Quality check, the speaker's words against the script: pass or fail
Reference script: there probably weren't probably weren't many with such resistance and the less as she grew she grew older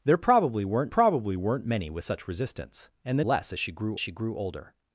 pass